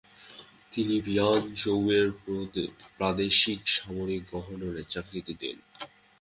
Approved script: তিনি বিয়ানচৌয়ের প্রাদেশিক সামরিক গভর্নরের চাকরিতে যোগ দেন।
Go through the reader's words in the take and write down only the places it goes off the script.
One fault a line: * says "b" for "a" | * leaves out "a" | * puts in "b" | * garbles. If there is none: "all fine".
* leaves out "যোগ"